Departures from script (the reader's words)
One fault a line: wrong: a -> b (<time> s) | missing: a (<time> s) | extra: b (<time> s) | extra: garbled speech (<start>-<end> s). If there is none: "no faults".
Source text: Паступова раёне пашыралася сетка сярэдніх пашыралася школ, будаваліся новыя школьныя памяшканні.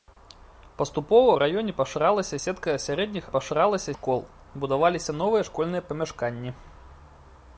no faults